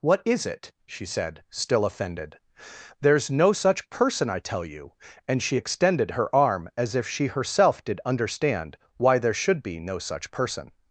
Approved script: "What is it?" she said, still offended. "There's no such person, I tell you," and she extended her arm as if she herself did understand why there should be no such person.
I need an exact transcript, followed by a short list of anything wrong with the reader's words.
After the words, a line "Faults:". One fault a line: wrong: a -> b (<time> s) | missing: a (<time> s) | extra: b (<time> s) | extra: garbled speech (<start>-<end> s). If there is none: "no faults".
"What is it?" she said, still offended. "There's no such person, I tell you," and she extended her arm as if she herself did understand why there should be no such person.
Faults:
no faults